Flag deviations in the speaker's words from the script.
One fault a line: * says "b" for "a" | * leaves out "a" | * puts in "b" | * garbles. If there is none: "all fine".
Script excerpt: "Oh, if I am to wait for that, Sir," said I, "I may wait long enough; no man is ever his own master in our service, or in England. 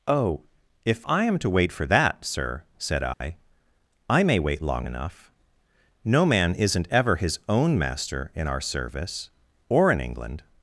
* says "isn't" for "is"